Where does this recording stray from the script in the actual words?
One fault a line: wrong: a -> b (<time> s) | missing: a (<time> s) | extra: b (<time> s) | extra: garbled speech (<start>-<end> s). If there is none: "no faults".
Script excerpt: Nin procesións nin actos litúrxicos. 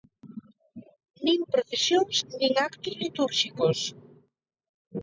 no faults